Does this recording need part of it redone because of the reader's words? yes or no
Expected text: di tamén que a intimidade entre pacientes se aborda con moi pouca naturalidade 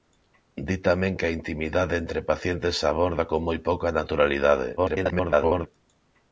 yes